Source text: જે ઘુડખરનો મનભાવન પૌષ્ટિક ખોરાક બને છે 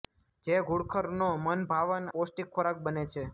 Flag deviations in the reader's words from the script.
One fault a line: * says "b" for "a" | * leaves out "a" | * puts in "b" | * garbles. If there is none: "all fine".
all fine